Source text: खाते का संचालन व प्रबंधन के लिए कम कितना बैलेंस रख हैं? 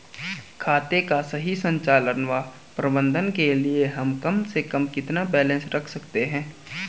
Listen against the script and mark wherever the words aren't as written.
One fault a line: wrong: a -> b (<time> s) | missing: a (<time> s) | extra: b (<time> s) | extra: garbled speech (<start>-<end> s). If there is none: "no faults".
extra: सही (1.2 s)
extra: हम (3.9 s)
extra: से कम (4.4 s)
extra: सकते (5.9 s)